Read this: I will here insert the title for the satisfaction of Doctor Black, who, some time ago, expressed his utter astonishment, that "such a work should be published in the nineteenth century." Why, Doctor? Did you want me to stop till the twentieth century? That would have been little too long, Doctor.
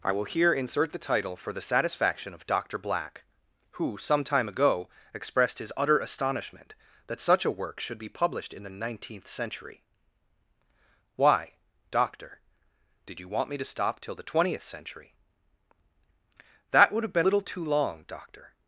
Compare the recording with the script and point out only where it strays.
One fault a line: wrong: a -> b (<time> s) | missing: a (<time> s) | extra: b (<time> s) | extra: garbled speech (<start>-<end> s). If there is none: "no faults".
no faults